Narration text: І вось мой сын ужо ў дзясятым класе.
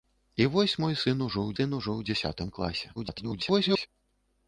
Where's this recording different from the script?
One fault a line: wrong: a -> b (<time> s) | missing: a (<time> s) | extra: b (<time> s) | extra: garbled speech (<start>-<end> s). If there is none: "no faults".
extra: сын ужо ў (1.6 s)
extra: garbled speech (3.0-3.9 s)